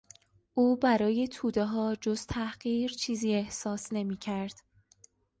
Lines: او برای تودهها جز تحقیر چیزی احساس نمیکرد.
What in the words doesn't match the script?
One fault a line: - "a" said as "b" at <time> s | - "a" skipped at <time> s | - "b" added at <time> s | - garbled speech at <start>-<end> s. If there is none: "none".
none